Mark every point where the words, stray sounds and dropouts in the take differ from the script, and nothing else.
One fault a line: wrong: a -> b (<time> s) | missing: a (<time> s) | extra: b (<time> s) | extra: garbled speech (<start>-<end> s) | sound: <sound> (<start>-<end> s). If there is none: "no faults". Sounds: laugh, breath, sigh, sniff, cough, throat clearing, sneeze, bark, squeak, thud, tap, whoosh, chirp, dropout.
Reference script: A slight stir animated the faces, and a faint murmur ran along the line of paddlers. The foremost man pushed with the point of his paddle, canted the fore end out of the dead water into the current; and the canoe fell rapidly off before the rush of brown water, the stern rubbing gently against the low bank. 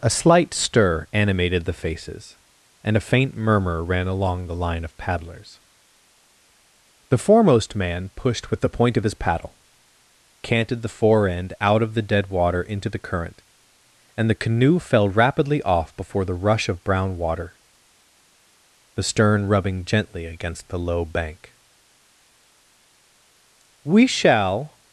extra: We shall (23.8 s)